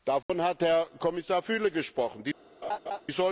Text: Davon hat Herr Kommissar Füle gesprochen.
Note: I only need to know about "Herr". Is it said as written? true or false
true